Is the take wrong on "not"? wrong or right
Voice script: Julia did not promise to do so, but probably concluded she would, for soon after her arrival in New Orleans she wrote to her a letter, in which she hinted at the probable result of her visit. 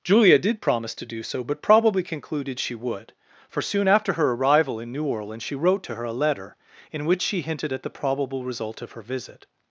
wrong